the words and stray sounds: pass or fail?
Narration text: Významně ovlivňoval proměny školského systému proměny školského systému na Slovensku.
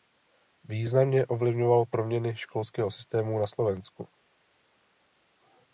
fail